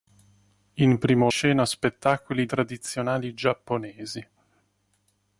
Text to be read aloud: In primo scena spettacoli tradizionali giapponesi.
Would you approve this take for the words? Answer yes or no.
yes